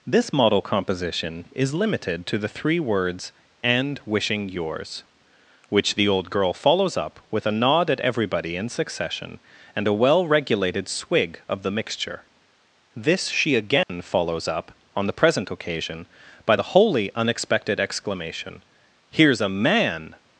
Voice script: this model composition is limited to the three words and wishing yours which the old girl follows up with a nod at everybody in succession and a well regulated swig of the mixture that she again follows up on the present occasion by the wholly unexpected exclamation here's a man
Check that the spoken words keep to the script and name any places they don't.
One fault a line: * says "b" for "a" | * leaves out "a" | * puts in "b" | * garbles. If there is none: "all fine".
* says "this" for "that"